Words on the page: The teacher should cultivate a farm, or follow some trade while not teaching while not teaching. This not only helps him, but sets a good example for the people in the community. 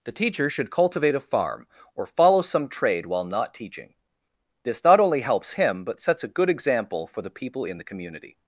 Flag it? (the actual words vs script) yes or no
yes